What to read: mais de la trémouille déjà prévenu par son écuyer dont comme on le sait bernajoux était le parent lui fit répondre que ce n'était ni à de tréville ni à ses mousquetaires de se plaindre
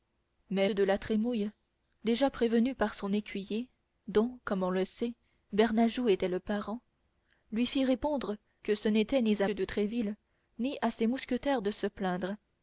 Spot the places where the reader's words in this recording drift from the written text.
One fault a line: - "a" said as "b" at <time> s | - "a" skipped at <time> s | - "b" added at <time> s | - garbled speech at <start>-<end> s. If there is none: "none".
none